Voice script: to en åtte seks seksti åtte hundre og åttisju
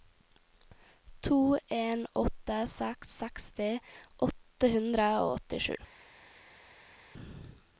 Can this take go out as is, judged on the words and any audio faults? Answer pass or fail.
pass